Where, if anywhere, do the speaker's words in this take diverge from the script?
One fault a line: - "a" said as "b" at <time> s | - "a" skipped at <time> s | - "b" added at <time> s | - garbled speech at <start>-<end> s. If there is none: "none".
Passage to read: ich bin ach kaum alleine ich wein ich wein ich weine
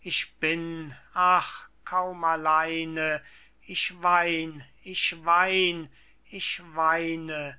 none